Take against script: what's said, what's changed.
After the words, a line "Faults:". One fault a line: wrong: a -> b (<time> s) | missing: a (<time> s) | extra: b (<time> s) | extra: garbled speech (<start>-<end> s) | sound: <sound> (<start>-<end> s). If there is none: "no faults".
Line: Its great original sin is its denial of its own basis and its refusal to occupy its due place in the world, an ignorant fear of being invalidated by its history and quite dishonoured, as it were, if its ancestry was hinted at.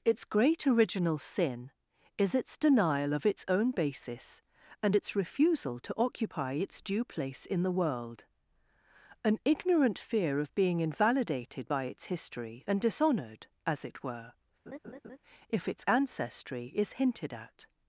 Its great original sin is its denial of its own basis and its refusal to occupy its due place in the world, an ignorant fear of being invalidated by its history and dishonoured, as it were, if its ancestry is hinted at.
Faults:
missing: quite (12.8 s)
sound: laugh (14.7-15.2 s)
wrong: was -> is (16.7 s)